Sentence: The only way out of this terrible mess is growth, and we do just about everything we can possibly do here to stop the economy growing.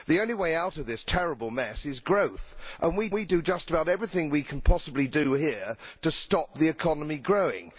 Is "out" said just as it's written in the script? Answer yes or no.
yes